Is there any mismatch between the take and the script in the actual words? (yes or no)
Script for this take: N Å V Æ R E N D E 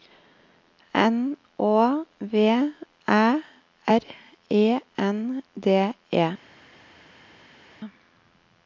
no